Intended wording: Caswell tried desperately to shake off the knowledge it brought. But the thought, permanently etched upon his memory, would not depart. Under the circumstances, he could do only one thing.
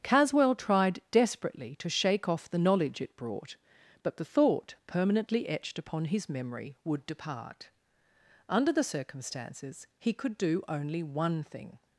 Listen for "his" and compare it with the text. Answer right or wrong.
right